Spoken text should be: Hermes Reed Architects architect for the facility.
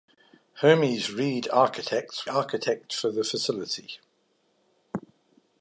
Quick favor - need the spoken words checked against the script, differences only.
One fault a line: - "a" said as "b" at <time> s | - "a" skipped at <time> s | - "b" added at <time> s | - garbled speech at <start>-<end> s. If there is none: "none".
none